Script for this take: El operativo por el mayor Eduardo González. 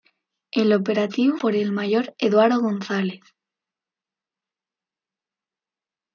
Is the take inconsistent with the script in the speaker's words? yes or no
no